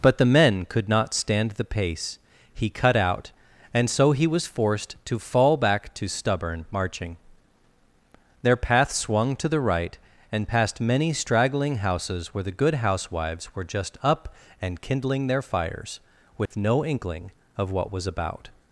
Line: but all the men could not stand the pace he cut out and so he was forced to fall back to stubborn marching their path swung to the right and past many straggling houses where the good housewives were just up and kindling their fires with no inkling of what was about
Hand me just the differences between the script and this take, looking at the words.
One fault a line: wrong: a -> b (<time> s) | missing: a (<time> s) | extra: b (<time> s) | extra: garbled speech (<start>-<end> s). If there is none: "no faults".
missing: all (0.2 s)